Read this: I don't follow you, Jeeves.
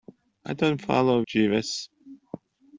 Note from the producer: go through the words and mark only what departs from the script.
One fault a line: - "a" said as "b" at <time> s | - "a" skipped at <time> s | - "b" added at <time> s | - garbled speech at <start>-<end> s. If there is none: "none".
- "you" skipped at 1.2 s